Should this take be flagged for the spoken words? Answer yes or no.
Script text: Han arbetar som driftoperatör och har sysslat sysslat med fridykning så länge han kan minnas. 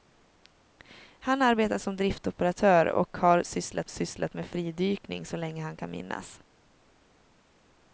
no